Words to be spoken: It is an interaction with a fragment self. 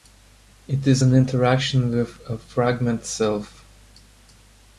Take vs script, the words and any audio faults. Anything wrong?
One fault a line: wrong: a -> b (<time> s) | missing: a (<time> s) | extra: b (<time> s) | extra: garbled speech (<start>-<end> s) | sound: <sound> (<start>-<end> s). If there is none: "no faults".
no faults